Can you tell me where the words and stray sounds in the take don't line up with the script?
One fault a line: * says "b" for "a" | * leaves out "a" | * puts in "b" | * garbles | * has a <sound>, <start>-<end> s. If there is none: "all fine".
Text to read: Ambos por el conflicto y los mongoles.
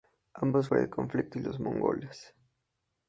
all fine